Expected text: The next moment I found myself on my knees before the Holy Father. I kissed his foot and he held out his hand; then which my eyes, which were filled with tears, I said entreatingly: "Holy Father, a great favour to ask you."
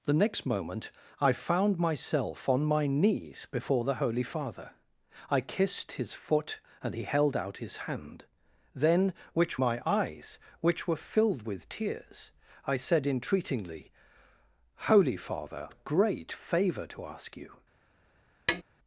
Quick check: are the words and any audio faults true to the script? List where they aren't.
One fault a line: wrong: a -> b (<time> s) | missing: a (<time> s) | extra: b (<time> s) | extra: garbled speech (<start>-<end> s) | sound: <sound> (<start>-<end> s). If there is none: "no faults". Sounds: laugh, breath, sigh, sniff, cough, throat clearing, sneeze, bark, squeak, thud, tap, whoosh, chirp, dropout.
sound: tap (18.5-18.6 s)